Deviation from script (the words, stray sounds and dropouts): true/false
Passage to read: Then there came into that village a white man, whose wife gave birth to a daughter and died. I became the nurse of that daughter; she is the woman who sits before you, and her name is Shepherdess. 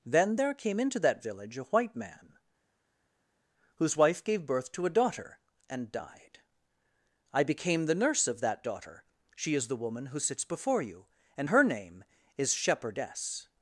false